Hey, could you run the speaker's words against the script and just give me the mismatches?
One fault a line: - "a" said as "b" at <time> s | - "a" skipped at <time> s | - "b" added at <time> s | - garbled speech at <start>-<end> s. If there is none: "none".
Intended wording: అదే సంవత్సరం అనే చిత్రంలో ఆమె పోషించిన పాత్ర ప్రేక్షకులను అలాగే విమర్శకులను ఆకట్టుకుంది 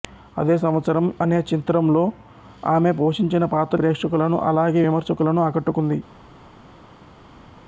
none